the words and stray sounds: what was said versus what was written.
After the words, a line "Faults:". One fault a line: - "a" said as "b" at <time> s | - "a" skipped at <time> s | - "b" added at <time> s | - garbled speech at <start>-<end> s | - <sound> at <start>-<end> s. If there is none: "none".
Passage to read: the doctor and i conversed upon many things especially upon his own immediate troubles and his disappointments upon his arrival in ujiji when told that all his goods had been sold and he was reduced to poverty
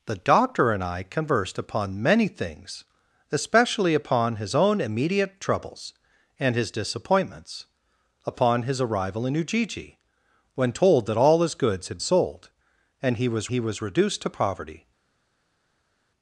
the doctor and i conversed upon many things especially upon his own immediate troubles and his disappointments upon his arrival in ujiji when told that all his goods had sold and he was he was reduced to poverty
Faults:
- "been" skipped at 12.0 s
- "he was" added at 13.5 s